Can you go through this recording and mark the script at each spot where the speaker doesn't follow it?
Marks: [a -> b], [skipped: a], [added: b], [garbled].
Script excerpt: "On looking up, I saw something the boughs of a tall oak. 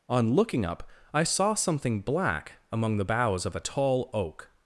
"On looking up, I saw something [added: black among] the boughs of a tall oak.